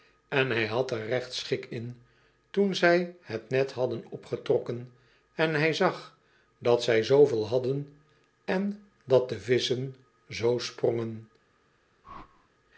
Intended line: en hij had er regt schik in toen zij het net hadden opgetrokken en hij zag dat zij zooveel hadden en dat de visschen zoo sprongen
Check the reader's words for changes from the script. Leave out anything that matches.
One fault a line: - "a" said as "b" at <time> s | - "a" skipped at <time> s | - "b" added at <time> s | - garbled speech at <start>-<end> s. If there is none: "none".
none